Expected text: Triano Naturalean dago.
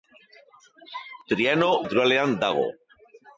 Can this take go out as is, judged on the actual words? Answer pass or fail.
pass